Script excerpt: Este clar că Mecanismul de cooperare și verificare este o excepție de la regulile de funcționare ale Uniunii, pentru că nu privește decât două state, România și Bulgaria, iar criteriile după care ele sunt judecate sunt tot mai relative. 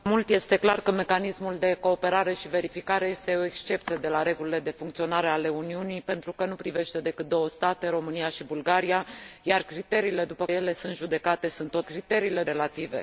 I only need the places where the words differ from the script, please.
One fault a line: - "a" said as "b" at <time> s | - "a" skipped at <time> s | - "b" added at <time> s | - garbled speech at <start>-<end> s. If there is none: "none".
- "care" skipped at 10.5 s
- "mai" said as "criteriile" at 11.8 s